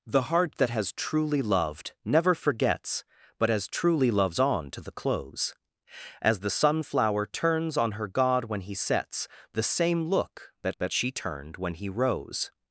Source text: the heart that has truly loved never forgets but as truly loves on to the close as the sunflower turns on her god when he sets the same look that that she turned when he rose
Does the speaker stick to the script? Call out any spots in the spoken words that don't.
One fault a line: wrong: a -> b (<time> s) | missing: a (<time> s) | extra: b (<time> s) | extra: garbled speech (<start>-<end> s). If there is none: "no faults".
no faults